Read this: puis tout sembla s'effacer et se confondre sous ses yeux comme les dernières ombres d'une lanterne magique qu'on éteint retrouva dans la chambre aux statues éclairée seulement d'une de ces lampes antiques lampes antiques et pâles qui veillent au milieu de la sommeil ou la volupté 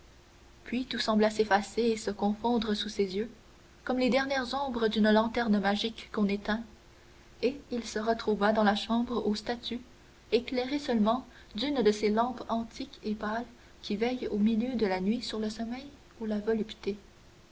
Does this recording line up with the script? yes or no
no